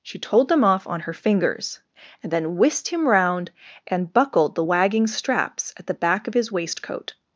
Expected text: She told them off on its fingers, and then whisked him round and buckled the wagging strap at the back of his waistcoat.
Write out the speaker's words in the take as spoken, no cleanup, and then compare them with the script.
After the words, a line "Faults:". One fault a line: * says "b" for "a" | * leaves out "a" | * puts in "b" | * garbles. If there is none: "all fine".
She told them off on her fingers, and then whisked him round and buckled the wagging straps at the back of his waistcoat.
Faults:
* says "her" for "its"
* says "straps" for "strap"